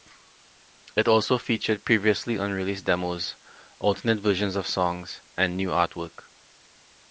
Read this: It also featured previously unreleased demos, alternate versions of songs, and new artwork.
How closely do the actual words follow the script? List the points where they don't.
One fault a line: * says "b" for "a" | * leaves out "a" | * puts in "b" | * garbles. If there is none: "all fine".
all fine